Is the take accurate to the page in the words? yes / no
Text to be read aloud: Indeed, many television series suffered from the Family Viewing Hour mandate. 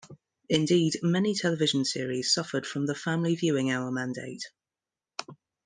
yes